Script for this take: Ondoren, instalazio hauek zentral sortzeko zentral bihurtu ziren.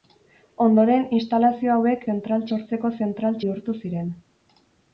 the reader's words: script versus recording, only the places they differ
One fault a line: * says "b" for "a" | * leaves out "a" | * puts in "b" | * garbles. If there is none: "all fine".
all fine